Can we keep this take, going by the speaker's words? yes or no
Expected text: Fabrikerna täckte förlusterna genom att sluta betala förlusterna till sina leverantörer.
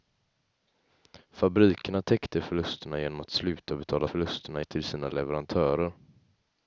yes